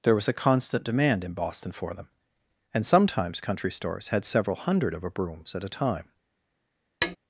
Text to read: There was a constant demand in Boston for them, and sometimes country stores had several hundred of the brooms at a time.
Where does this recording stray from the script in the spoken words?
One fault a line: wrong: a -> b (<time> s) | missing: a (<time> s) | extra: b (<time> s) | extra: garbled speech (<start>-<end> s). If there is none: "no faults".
wrong: the -> a (5.0 s)